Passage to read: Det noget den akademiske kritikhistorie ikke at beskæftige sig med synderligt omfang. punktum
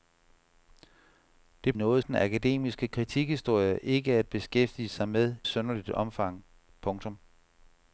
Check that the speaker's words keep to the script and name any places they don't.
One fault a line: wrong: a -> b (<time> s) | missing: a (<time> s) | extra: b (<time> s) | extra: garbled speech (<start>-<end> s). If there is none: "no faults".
no faults